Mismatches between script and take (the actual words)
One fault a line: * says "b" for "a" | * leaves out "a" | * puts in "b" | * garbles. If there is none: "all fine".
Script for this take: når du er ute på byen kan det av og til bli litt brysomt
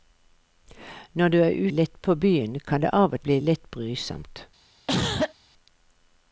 * says "litt" for "ute"
* leaves out "til"